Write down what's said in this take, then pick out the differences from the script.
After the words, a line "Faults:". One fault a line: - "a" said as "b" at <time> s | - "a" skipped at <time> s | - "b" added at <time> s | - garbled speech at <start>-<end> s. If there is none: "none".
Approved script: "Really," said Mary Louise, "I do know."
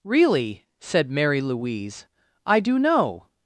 "Really," said Mary Louise, "I do know."
Faults:
none